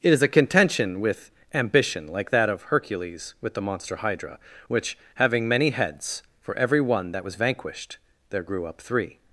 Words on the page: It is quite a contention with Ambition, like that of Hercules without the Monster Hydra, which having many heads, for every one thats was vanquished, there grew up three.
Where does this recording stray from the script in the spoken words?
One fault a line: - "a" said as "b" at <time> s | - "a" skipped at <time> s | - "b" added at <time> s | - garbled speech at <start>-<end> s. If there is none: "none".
- "quite" skipped at 0.2 s
- "without" said as "with" at 3.4 s
- "thats" said as "that" at 7.1 s